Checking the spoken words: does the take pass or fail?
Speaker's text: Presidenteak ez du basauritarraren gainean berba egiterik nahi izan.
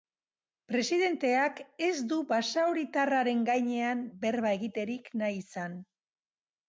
pass